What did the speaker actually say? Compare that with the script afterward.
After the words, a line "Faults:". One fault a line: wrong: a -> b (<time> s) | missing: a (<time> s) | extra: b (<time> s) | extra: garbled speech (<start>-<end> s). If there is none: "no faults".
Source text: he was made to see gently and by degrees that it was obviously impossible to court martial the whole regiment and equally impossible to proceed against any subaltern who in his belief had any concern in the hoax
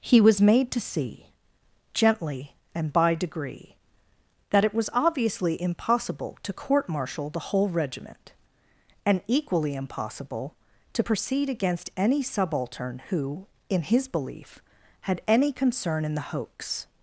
he was made to see gently and by degree that it was obviously impossible to court martial the whole regiment and equally impossible to proceed against any subaltern who in his belief had any concern in the hoax
Faults:
wrong: degrees -> degree (3.1 s)